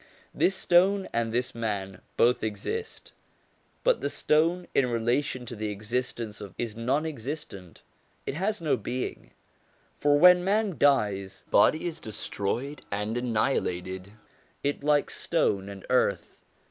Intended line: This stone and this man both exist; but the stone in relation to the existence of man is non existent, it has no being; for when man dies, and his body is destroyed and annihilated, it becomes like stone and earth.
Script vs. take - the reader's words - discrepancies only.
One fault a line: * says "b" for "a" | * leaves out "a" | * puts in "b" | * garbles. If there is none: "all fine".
* leaves out "man"
* leaves out "and his"
* leaves out "becomes"